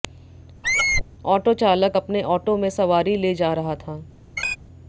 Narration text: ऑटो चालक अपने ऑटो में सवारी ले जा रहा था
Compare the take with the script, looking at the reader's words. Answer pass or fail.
pass